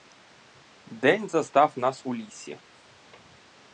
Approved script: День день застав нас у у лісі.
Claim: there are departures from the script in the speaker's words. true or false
true